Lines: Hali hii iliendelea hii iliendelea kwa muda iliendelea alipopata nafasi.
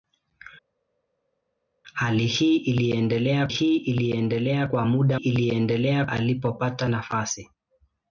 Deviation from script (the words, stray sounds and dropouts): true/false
false